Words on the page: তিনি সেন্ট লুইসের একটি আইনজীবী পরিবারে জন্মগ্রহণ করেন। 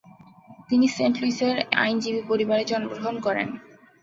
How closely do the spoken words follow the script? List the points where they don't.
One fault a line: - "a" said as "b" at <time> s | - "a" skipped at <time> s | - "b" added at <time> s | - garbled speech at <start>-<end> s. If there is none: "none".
- "একটি" skipped at 1.6 s